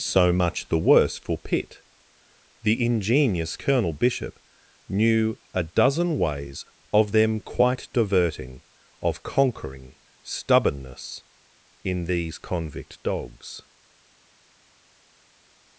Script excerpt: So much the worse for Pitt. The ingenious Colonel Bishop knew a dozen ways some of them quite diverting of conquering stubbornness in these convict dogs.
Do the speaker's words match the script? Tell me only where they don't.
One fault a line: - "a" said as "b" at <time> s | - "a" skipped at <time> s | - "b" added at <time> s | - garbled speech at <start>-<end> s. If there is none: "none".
- "some" skipped at 6.7 s